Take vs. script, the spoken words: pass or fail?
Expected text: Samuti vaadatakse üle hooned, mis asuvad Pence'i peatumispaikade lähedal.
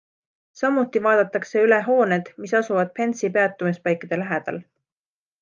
pass